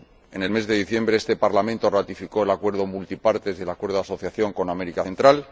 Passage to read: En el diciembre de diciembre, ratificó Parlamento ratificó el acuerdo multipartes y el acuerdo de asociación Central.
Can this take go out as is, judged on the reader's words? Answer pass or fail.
fail